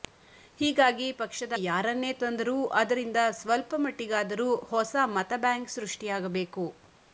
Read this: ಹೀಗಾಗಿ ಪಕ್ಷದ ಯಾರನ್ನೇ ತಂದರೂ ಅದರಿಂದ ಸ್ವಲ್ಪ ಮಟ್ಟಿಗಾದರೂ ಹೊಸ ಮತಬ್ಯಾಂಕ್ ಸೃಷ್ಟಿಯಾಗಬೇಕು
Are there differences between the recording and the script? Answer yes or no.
no